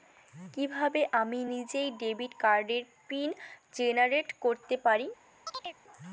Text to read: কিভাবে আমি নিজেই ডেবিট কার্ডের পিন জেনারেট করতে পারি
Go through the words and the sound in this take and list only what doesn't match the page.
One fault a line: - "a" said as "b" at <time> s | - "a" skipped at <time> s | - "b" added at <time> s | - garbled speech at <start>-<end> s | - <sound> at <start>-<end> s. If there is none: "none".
- chirp at 5.5-5.8 s